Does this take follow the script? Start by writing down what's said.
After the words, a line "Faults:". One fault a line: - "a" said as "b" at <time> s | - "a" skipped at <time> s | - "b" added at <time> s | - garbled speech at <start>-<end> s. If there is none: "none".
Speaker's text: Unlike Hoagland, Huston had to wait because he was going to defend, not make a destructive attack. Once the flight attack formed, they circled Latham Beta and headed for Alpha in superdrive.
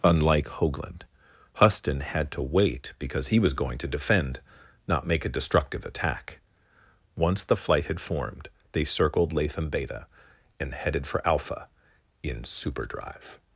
Unlike Hoagland, Huston had to wait because he was going to defend, not make a destructive attack. Once the flight had formed, they circled Latham Beta and headed for Alpha in superdrive.
Faults:
- "attack" said as "had" at 7.8 s